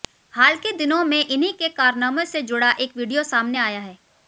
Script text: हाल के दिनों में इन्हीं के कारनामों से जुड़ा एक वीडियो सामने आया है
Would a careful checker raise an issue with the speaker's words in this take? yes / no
no